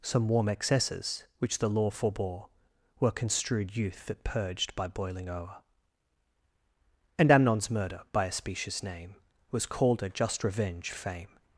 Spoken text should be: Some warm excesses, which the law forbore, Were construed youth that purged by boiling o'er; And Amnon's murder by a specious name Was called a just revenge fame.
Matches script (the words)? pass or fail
pass